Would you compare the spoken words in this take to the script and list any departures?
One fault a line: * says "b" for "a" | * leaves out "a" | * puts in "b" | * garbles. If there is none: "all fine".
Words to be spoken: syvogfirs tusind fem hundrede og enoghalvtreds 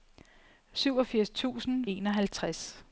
* leaves out "fem hundrede og"